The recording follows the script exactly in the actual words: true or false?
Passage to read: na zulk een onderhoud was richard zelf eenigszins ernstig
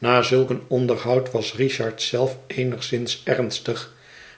true